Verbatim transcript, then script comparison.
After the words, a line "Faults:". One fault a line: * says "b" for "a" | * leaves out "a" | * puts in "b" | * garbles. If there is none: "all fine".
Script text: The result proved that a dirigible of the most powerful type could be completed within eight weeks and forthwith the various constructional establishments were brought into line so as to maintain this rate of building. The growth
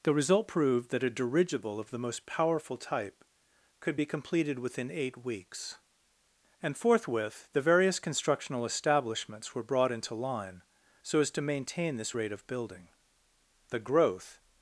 The result proved that a dirigible of the most powerful type could be completed within eight weeks and forthwith the various constructional establishments were brought into line so as to maintain this rate of building. The growth
Faults:
all fine